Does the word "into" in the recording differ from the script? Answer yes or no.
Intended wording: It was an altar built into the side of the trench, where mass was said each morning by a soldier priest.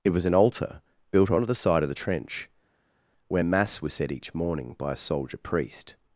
yes